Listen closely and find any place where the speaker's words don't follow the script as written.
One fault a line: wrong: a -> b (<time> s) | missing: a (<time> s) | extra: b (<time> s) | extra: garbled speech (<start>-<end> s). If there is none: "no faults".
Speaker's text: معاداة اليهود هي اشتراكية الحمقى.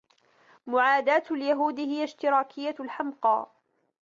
no faults